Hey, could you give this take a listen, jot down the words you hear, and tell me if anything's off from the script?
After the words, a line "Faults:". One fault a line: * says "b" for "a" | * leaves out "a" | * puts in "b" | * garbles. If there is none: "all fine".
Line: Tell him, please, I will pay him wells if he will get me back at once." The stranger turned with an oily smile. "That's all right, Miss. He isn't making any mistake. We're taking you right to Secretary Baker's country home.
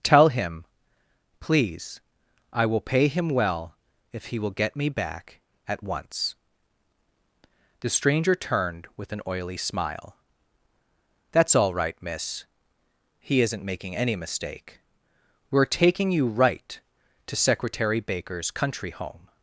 Tell him, please, I will pay him well if he will get me back at once." The stranger turned with an oily smile. "That's all right, Miss. He isn't making any mistake. We're taking you right to Secretary Baker's country home.
Faults:
* says "well" for "wells"